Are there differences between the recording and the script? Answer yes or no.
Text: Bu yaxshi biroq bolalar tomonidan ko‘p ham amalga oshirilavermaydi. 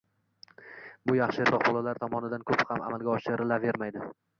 no